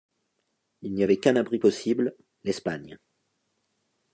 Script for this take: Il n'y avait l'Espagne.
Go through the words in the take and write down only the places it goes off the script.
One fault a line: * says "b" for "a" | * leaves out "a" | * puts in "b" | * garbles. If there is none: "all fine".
* puts in "qu'un abri possible"